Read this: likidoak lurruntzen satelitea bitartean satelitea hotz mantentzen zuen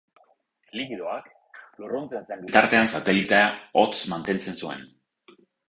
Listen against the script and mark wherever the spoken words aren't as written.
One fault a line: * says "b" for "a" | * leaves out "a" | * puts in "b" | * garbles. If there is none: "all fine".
* says "zen" for "satelitea"